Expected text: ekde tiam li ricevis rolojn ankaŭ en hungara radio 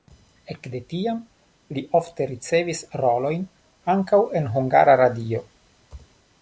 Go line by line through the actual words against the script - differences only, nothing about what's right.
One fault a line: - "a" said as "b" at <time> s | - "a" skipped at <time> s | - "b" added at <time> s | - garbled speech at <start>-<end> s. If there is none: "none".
- "ofte" added at 2.0 s